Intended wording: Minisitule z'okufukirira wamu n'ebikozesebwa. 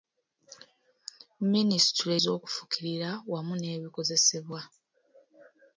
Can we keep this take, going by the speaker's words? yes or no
yes